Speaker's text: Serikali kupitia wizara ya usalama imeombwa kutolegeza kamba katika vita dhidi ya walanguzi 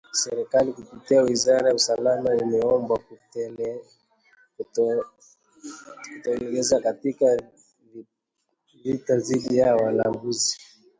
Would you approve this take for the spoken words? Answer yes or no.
no